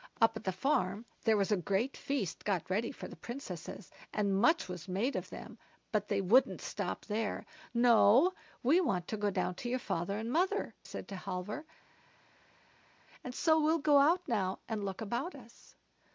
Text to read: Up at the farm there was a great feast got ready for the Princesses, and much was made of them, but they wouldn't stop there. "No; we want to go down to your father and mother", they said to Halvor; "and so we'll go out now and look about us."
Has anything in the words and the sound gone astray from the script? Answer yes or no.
yes